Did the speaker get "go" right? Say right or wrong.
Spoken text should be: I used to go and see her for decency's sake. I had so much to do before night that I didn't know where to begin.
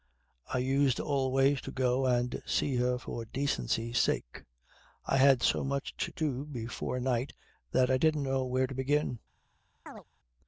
right